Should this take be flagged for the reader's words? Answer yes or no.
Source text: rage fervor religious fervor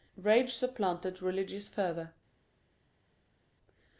yes